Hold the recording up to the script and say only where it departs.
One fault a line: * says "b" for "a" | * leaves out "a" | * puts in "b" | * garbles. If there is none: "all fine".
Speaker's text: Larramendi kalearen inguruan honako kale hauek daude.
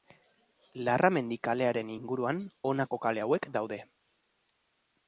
all fine